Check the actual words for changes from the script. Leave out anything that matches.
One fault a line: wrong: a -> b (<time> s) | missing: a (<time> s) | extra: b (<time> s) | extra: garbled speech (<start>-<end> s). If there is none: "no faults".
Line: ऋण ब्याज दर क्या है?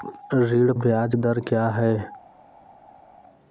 no faults